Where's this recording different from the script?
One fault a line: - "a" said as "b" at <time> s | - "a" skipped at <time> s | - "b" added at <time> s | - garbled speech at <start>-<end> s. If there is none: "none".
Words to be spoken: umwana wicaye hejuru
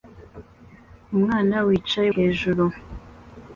none